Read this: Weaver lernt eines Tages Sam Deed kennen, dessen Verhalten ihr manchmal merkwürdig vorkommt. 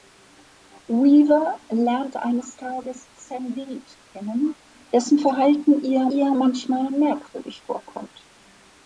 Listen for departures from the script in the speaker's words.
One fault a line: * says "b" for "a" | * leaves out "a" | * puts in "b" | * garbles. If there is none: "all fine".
* puts in "ihr"